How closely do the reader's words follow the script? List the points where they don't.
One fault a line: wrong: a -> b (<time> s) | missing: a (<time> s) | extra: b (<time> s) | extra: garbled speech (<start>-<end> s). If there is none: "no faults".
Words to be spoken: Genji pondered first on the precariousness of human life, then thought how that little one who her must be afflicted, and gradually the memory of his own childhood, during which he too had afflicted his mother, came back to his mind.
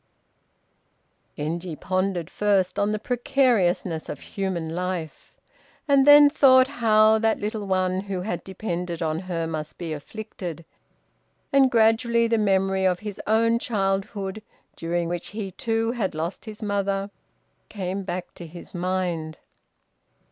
extra: and (5.9 s)
extra: had depended on (8.2 s)
wrong: afflicted -> lost (16.1 s)